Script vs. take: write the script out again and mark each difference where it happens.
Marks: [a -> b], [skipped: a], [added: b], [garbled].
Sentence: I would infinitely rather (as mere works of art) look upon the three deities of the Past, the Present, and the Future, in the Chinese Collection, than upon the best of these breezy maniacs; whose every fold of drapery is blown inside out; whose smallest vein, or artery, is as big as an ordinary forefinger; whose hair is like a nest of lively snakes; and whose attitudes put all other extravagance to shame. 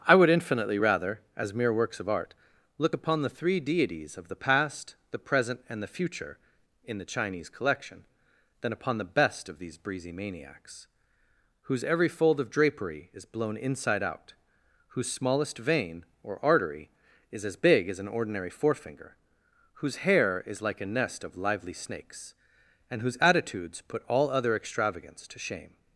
I would infinitely rather (as mere works of art) look upon the three deities of the Past, the Present, and the Future, in the Chinese Collection, than upon the best of these breezy maniacs; whose every fold of drapery is blown inside out; whose smallest vein, or artery, is as big as an ordinary forefinger; whose hair is like a nest of lively snakes; and whose attitudes put all other extravagance to shame.